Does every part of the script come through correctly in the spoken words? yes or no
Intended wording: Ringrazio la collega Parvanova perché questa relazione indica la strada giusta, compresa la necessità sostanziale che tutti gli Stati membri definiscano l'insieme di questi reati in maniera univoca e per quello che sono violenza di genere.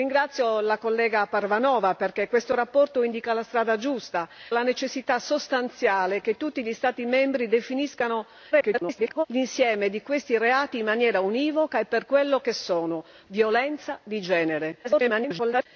no